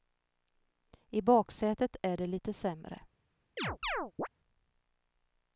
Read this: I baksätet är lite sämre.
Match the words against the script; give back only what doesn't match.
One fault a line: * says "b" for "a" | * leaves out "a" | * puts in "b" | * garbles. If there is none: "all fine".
* puts in "det"